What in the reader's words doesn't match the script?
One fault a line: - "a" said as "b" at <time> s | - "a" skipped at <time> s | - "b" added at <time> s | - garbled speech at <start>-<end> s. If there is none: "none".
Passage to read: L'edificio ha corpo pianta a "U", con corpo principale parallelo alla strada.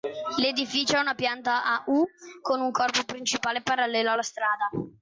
- "corpo" said as "una" at 1.0 s
- "un" added at 2.6 s